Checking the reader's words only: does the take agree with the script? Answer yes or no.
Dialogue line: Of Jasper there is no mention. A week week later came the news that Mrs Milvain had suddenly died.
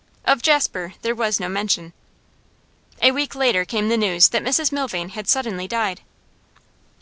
no